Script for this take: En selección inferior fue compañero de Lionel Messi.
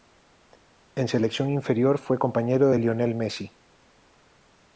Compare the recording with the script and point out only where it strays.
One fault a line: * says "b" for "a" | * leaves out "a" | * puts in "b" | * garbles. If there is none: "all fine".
all fine